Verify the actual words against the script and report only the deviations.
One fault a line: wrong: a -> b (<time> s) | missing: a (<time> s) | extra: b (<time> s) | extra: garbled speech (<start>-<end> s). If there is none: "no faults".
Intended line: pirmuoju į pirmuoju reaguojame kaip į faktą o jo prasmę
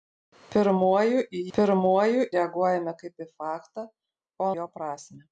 no faults